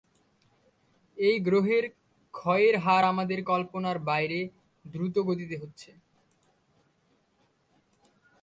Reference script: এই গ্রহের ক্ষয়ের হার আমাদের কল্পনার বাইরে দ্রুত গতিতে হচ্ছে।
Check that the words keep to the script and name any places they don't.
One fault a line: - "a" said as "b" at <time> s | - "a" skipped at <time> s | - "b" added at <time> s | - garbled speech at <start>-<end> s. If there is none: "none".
none